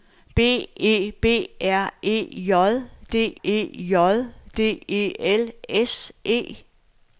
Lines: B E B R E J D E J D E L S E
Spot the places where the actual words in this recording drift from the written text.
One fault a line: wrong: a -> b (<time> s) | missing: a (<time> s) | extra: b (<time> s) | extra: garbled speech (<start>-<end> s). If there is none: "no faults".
no faults